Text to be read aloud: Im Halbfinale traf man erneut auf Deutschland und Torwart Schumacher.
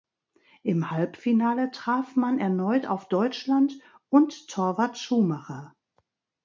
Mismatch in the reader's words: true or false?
false